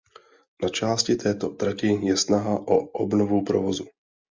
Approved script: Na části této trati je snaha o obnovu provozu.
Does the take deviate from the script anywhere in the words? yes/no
no